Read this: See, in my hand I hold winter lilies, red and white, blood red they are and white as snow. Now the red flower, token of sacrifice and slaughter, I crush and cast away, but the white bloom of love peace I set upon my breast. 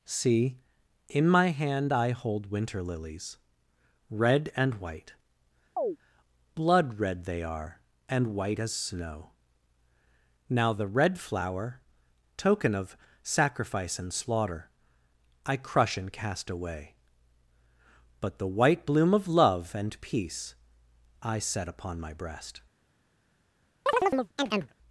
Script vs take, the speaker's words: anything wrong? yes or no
yes